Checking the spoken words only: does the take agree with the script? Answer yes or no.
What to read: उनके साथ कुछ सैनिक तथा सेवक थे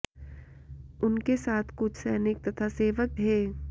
yes